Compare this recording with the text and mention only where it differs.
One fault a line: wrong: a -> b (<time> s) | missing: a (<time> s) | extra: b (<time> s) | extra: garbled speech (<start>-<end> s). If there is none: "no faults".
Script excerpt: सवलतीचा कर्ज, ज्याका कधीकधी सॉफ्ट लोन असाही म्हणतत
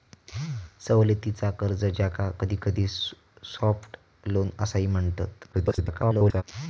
extra: garbled speech (5.5-6.4 s)